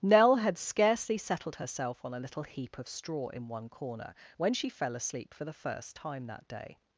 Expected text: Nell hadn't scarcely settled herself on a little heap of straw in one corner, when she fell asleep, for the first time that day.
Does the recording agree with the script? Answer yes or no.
no